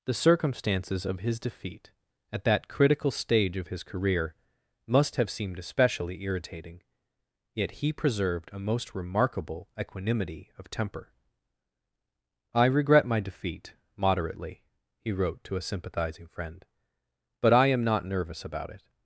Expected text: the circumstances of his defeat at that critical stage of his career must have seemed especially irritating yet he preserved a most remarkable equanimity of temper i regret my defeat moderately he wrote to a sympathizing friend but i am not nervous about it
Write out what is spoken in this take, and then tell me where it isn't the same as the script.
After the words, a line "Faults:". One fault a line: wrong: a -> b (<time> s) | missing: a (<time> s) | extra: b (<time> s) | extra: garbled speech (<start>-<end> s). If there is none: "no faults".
the circumstances of his defeat at that critical stage of his career must have seemed especially irritating yet he preserved a most remarkable equanimity of temper i regret my defeat moderately he wrote to a sympathizing friend but i am not nervous about it
Faults:
no faults